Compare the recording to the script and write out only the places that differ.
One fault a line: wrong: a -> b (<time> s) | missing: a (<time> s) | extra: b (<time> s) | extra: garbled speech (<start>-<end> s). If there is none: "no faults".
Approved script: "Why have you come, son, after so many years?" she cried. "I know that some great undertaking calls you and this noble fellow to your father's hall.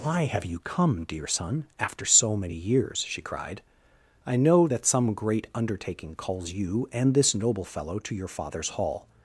extra: dear (1.0 s)